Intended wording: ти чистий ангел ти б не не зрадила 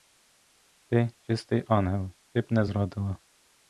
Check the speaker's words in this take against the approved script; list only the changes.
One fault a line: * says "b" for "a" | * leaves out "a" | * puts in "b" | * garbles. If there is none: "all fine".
* leaves out "не"